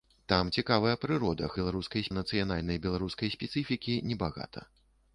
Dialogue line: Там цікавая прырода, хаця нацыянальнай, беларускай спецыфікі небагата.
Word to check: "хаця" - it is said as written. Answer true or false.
false